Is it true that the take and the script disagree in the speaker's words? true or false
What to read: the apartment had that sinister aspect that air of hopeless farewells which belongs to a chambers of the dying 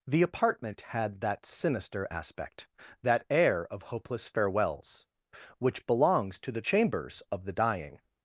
true